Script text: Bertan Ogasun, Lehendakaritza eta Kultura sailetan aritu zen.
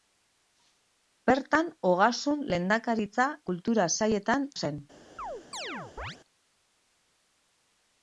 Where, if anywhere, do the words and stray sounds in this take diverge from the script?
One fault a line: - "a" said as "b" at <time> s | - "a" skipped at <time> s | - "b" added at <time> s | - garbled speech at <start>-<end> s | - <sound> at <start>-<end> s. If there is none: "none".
- "eta" skipped at 3.3 s
- "aritu" skipped at 4.5 s
- chirp at 5.2-6.2 s